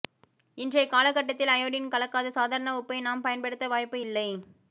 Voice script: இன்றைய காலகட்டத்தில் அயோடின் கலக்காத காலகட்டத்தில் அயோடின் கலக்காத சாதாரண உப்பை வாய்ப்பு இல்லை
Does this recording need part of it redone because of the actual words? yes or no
yes